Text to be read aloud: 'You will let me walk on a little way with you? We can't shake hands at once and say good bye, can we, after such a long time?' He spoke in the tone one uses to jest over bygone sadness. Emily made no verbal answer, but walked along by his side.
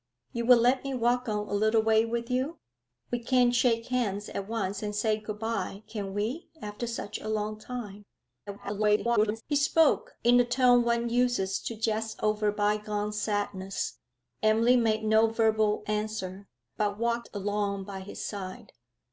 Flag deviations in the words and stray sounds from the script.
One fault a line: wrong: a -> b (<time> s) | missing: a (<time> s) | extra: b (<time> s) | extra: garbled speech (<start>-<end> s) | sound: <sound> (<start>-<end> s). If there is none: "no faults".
extra: garbled speech (8.5-9.4 s)